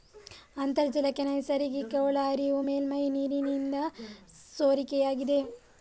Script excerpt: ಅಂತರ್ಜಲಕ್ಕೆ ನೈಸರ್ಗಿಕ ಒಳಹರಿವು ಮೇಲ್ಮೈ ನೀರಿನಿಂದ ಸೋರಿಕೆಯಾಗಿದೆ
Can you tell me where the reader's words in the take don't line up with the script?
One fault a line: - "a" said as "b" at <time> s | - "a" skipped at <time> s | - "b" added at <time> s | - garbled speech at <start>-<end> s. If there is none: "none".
none